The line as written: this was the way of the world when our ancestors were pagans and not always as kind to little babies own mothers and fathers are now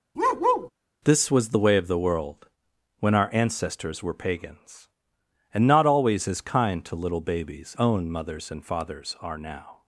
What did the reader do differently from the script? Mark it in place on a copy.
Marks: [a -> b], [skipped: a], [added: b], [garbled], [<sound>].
[bark] this was the way of the world when our ancestors were pagans and not always as kind to little babies own mothers and fathers are now